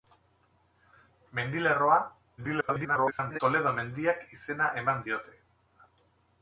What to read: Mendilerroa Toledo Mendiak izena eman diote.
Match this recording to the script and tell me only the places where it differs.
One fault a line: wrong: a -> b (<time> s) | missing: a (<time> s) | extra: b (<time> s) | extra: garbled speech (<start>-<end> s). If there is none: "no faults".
extra: garbled speech (2.4-3.4 s)